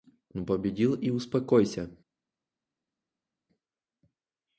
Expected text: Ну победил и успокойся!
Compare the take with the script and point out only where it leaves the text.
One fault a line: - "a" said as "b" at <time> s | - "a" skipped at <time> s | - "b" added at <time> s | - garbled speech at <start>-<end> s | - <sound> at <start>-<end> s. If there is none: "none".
none